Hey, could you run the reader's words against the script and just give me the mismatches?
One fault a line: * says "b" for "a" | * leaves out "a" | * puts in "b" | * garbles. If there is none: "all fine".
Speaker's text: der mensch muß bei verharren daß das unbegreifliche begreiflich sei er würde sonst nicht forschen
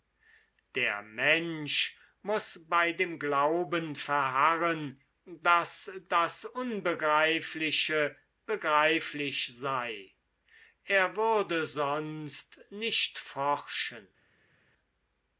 * puts in "dem glauben"